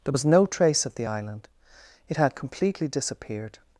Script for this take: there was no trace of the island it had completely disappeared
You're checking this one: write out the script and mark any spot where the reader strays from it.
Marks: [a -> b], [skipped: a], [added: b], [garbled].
there was no trace of the island it had completely disappeared